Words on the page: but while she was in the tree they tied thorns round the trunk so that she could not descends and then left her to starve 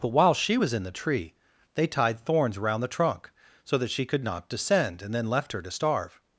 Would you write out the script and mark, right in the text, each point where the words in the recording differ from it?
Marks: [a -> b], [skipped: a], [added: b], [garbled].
but while she was in the tree they tied thorns round the trunk so that she could not [descends -> descend] and then left her to starve